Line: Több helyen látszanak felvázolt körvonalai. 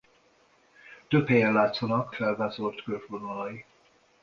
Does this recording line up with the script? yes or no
yes